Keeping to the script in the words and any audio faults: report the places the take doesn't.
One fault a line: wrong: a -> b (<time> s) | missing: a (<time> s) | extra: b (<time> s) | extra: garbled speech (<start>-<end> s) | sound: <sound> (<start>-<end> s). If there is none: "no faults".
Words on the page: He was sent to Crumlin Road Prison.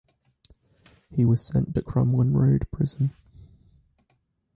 no faults